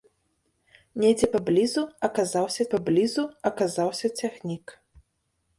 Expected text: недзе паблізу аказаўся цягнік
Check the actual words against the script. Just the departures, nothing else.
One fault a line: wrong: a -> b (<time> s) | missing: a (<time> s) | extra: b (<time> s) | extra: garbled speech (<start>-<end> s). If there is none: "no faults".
extra: паблізу аказаўся (2.7 s)